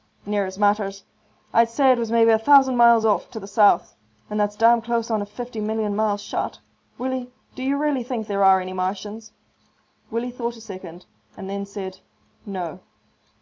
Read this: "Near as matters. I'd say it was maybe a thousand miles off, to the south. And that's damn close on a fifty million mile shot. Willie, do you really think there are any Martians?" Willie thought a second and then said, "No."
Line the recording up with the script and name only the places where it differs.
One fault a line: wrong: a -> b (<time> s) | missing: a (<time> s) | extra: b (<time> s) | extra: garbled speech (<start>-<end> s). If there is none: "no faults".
no faults